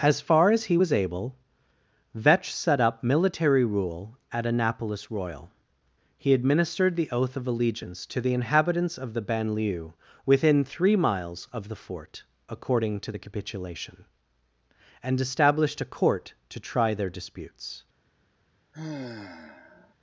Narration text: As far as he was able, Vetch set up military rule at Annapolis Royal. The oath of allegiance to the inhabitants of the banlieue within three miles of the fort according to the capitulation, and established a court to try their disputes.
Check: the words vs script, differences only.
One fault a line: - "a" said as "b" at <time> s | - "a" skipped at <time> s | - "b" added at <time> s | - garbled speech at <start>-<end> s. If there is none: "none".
- "He administered" added at 6.2 s